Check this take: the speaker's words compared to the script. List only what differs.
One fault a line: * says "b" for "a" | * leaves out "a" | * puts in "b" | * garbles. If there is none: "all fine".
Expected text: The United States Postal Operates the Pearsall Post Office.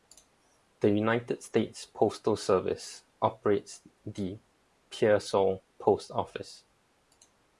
* puts in "Service"